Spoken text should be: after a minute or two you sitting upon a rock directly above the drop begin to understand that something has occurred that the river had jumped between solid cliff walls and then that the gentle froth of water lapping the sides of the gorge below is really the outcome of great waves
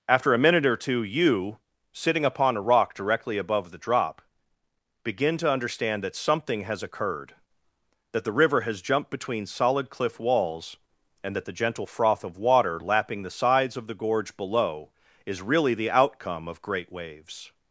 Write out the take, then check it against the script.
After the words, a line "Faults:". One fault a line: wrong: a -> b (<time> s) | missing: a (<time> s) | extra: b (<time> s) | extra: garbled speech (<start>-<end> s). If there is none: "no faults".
after a minute or two you sitting upon a rock directly above the drop begin to understand that something has occurred that the river has jumped between solid cliff walls and that the gentle froth of water lapping the sides of the gorge below is really the outcome of great waves
Faults:
wrong: had -> has (8.6 s)
missing: then (11.3 s)